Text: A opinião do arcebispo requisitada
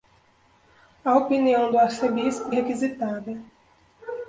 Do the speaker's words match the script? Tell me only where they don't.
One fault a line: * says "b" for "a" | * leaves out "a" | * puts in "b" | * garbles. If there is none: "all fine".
all fine